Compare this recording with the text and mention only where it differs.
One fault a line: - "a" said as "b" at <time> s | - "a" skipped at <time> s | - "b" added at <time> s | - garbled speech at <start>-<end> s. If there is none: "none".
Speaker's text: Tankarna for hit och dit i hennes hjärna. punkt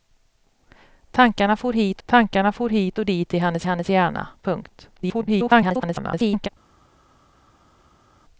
- "tankarna for hit" added at 2.1 s
- "hennes" added at 3.6 s
- garbled speech at 5.0-6.5 s